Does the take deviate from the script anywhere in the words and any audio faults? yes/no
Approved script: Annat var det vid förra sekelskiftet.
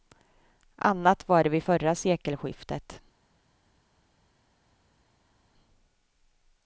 no